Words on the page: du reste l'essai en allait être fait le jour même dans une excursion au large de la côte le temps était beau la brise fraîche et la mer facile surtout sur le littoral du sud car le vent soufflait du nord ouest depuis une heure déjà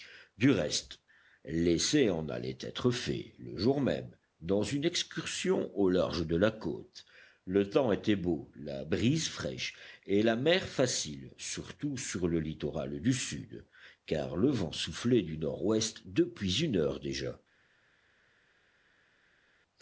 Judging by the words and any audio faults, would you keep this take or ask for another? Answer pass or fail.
pass